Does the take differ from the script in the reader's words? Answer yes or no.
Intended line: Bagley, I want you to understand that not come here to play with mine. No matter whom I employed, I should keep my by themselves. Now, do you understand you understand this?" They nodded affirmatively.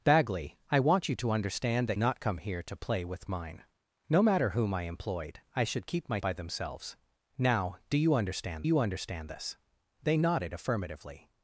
no